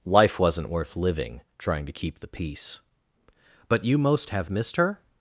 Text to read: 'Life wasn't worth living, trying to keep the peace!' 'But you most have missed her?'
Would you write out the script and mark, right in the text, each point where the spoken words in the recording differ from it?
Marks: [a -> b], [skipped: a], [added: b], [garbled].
'Life wasn't worth living, trying to keep the peace!' 'But you most have missed her?'